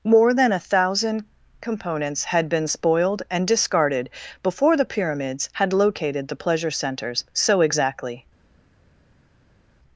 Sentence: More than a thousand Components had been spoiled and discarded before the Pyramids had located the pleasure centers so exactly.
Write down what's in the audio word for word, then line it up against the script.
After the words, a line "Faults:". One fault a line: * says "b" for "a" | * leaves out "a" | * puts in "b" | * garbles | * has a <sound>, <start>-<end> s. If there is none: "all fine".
More than a thousand Components had been spoiled and discarded before the Pyramids had located the pleasure centers so exactly.
Faults:
all fine